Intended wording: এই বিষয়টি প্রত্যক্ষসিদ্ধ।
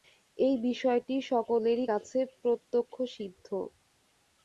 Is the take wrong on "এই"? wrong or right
right